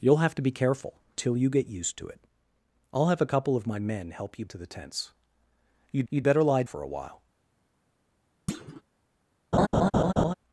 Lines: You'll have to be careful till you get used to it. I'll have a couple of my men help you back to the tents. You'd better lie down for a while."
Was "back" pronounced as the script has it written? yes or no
no